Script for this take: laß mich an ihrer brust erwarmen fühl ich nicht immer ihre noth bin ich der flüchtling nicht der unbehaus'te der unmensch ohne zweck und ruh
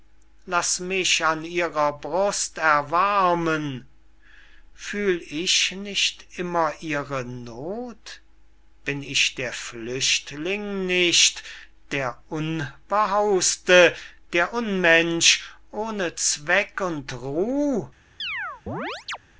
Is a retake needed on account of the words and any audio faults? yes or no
yes